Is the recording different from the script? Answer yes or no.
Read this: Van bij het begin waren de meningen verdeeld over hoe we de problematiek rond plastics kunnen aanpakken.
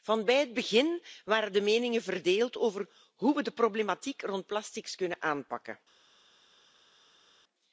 no